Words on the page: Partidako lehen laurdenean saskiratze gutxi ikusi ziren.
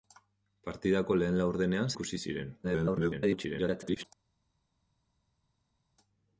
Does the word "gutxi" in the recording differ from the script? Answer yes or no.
yes